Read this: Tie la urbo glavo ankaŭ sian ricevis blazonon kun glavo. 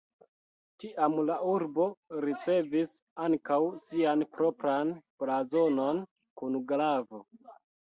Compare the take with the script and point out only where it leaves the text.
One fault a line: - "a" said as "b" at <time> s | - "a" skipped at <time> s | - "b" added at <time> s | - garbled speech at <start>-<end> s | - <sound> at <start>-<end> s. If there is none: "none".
- "Tie" said as "Tiam" at 0.8 s
- "glavo" said as "ricevis" at 2.2 s
- "ricevis" said as "propran" at 4.4 s